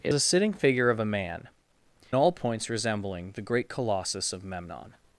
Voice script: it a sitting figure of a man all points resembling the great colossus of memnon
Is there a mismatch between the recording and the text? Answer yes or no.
no